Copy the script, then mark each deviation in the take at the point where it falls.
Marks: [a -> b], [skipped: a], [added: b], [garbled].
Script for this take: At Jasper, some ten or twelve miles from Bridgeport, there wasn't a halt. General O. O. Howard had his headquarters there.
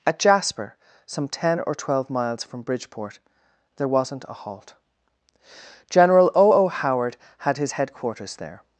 At Jasper, some ten or twelve miles from Bridgeport, there wasn't a halt. General O. O. Howard had his headquarters there.